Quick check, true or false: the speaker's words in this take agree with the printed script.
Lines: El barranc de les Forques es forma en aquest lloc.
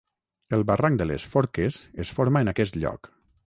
true